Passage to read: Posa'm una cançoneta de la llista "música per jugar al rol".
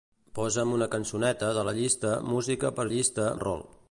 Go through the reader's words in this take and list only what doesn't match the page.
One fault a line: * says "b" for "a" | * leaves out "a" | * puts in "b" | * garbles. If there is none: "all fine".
* says "llista" for "jugar"